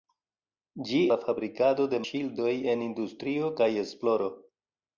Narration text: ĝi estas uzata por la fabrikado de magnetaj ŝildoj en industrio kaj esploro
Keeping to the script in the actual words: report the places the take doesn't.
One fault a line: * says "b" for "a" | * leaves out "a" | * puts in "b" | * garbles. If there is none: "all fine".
* leaves out "estas uzata por"
* leaves out "magnetaj"